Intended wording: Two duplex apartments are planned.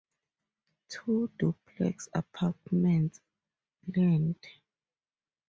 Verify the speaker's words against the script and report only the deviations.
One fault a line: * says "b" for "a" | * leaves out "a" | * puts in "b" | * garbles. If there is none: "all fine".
* leaves out "are"